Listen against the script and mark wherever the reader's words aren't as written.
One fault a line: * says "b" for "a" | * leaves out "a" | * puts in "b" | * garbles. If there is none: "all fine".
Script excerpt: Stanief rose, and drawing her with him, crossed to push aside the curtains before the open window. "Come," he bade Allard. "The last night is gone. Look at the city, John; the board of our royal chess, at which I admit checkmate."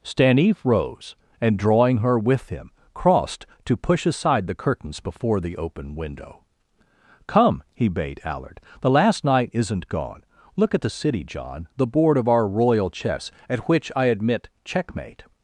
* says "isn't" for "is"